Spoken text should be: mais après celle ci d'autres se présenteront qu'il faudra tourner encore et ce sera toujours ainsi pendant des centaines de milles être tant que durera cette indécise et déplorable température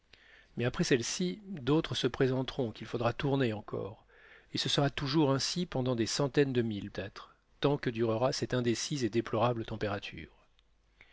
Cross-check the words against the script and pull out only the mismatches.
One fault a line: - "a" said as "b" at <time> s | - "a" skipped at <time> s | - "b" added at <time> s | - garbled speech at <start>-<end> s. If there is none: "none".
none